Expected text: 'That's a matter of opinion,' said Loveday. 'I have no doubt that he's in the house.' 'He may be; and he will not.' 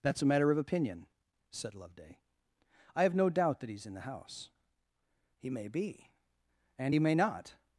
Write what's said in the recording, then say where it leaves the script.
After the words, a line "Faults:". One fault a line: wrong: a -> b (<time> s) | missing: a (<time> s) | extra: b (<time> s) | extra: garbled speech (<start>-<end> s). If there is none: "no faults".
'That's a matter of opinion,' said Loveday. 'I have no doubt that he's in the house.' 'He may be; and he may not.'
Faults:
wrong: will -> may (7.0 s)